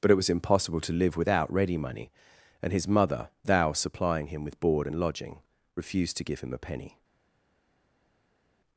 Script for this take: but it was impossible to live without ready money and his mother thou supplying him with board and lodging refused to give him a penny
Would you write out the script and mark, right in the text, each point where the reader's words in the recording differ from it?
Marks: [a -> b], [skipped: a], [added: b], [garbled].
but it was impossible to live without ready money and his mother thou supplying him with board and lodging refused to give him a penny